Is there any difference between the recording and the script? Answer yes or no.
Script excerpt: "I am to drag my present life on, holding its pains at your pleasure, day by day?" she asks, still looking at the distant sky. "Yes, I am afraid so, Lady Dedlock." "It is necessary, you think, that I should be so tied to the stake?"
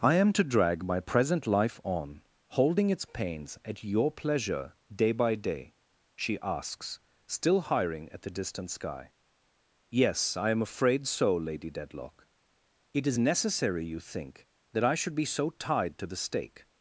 yes